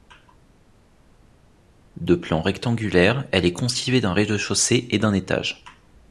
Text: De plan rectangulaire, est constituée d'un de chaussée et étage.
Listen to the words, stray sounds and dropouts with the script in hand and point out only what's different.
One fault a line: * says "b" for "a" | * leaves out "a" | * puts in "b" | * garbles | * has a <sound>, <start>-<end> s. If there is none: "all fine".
* puts in "elle"
* puts in "rez"
* puts in "d'un"